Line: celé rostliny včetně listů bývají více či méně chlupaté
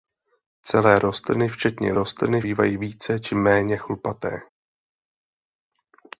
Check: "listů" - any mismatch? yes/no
yes